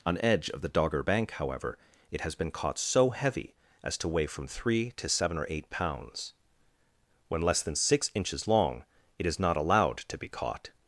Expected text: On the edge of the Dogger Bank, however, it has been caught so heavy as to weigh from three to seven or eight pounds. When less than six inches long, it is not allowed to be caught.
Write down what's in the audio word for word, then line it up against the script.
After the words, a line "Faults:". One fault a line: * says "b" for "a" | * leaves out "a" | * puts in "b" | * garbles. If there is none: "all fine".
On edge of the Dogger Bank, however, it has been caught so heavy as to weigh from three to seven or eight pounds. When less than six inches long, it is not allowed to be caught.
Faults:
* leaves out "the"